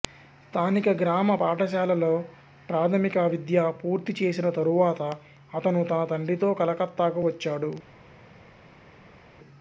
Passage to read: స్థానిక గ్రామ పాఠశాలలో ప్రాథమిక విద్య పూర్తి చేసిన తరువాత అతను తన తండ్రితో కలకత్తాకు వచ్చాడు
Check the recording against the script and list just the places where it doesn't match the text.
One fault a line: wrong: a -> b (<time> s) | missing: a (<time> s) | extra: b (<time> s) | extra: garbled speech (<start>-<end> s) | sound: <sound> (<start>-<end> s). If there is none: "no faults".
no faults